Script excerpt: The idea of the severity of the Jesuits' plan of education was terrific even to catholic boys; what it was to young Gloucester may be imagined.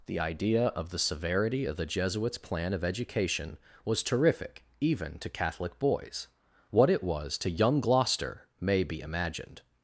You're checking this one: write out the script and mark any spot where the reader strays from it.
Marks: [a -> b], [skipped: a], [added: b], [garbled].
The idea of the severity of the Jesuits' plan of education was terrific even to catholic boys; what it was to young Gloucester may be imagined.